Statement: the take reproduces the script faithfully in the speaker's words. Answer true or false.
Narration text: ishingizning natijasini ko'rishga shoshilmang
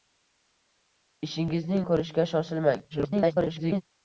false